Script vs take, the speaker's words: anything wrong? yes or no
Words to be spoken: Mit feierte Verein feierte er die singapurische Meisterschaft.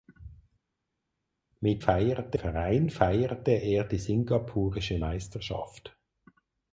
no